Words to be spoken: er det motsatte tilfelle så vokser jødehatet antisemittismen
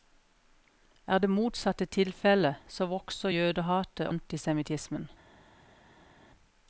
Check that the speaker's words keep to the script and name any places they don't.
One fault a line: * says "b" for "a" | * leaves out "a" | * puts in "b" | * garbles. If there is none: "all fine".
all fine